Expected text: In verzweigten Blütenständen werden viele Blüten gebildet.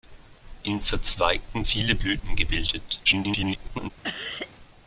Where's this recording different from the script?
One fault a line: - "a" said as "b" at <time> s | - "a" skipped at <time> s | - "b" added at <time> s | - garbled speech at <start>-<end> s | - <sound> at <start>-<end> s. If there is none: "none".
- "Blütenständen werden" skipped at 1.6 s
- garbled speech at 3.0-3.9 s
- cough at 4.0-4.5 s